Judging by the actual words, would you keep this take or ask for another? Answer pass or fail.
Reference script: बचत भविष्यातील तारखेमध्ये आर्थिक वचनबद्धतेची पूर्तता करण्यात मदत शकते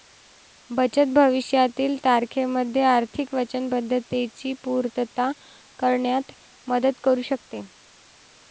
fail